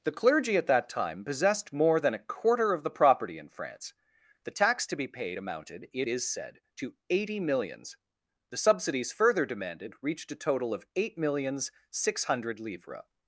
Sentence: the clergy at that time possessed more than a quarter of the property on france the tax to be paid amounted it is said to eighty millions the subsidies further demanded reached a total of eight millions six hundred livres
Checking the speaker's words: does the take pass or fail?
fail